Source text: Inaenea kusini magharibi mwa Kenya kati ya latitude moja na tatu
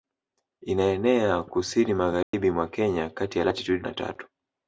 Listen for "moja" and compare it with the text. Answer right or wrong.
wrong